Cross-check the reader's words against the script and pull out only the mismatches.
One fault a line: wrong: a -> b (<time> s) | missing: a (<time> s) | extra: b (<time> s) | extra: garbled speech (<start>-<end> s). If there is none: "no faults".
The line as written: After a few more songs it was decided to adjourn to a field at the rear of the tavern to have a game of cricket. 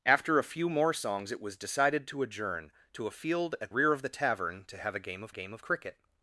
missing: the (3.7 s)
extra: game of (5.3 s)